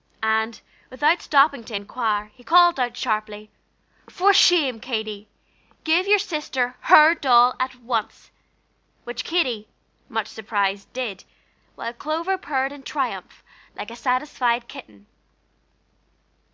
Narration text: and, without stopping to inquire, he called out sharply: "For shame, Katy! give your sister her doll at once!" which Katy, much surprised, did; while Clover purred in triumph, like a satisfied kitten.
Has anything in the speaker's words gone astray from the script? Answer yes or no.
no